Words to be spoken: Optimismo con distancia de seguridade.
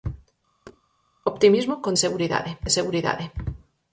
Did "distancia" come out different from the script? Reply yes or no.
yes